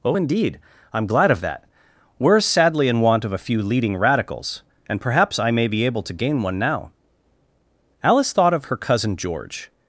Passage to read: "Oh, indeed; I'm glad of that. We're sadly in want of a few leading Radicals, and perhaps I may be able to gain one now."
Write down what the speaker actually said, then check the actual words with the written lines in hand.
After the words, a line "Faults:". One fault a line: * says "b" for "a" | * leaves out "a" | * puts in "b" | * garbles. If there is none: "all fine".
"Oh, indeed; I'm glad of that. We're sadly in want of a few leading Radicals, and perhaps I may be able to gain one now." Alice thought of her cousin George
Faults:
* puts in "Alice thought of her cousin George"